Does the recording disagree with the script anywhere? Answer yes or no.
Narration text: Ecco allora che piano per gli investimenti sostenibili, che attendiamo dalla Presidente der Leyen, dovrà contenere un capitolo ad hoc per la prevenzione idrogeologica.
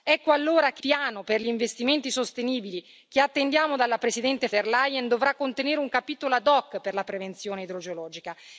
no